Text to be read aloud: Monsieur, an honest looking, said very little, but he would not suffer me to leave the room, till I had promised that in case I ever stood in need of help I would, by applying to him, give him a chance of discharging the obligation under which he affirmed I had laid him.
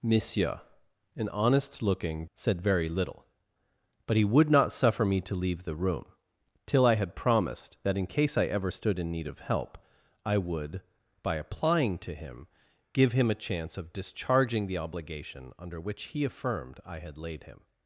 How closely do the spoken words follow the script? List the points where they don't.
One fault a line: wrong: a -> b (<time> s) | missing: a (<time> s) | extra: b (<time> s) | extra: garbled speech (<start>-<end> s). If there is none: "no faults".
no faults